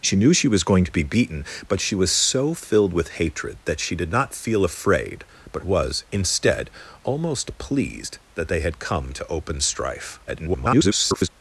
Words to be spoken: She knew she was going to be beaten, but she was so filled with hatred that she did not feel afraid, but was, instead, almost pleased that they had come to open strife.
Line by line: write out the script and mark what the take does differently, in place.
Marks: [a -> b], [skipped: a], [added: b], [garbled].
She knew she was going to be beaten, but she was so filled with hatred that she did not feel afraid, but was, instead, almost pleased that they had come to open strife. [garbled]